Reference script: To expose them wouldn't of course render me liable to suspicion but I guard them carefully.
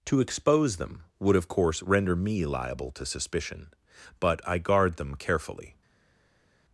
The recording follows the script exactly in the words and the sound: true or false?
false